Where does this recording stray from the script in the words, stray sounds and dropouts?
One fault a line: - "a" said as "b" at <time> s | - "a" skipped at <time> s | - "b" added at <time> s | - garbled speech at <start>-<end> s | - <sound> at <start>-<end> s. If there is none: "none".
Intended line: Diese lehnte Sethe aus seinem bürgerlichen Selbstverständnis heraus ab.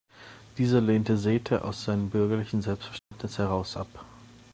- dropout at 3.0-3.1 s